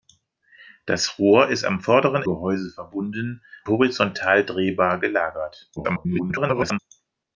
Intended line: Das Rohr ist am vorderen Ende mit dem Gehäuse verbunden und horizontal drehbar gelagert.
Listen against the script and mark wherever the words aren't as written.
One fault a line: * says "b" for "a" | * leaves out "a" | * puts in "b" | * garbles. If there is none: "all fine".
* leaves out "Ende mit dem"
* leaves out "und"
* garbles